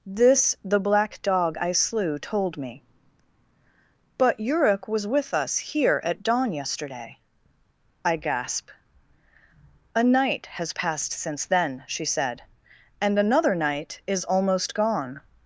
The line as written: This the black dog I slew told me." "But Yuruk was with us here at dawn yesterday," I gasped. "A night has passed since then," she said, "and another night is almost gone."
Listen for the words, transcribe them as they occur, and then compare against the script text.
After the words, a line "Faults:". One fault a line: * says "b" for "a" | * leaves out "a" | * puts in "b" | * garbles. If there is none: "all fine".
This the black dog I slew told me." "But Yuruk was with us here at dawn yesterday," I gasp. "A night has passed since then," she said, "and another night is almost gone."
Faults:
* says "gasp" for "gasped"